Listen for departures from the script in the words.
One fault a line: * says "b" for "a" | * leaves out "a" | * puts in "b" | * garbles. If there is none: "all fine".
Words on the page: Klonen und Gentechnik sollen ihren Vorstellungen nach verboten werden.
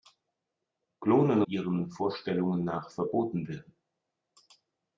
* leaves out "und Gentechnik sollen"